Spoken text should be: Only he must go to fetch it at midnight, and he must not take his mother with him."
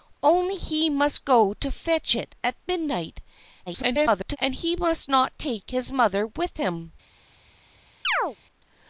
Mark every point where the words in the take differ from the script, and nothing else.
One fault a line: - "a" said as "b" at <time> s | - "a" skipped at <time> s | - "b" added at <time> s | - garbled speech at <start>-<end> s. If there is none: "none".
- garbled speech at 3.7-4.4 s